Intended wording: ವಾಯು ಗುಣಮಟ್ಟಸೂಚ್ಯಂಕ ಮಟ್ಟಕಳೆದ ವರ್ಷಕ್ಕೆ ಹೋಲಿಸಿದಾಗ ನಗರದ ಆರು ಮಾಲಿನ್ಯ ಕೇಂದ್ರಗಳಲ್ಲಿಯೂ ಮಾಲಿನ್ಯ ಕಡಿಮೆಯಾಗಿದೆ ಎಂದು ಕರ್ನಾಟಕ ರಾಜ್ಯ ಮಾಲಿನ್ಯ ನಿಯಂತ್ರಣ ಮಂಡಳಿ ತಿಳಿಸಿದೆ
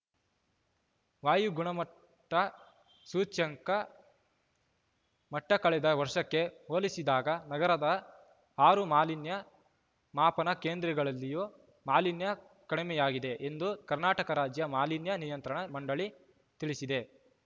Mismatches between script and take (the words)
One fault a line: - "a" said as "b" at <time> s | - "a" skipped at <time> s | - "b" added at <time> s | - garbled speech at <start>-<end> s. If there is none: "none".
- "ಮಾಪನ" added at 10.1 s